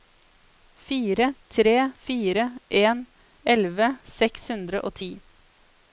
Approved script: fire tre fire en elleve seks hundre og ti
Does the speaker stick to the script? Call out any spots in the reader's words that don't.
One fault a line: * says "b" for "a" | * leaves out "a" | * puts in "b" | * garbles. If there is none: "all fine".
all fine